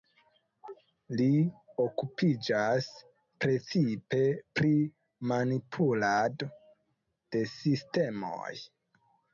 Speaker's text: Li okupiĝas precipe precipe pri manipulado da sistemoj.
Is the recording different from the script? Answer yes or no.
yes